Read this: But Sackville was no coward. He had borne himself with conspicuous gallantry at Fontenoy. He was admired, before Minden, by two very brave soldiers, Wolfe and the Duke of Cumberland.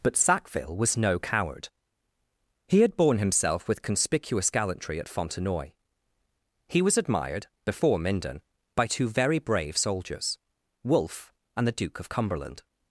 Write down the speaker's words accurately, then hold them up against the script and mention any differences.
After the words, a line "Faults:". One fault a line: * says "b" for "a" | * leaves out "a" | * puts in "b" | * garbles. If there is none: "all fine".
But Sackville was no coward. He had borne himself with conspicuous gallantry at Fontenoy. He was admired, before Minden, by two very brave soldiers, Wolfe and the Duke of Cumberland.
Faults:
all fine